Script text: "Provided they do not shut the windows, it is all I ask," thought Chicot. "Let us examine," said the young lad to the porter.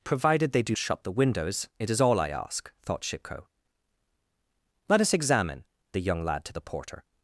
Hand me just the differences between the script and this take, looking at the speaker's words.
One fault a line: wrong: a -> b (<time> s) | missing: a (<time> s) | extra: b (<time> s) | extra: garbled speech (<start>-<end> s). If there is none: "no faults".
missing: not (0.8 s)
missing: said (5.6 s)